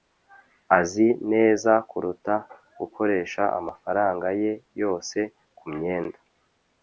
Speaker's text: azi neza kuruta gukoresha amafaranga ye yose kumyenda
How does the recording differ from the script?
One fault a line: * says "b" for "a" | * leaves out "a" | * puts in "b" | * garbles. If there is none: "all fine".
all fine